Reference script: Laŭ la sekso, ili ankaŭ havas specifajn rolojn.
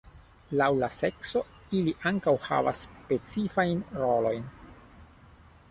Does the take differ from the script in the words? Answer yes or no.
no